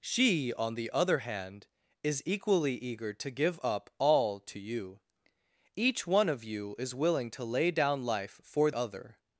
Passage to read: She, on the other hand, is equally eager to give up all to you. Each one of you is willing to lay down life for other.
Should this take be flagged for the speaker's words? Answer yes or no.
no